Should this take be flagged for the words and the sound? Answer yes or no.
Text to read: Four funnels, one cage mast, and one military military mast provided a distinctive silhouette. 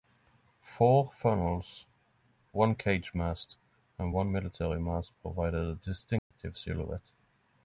yes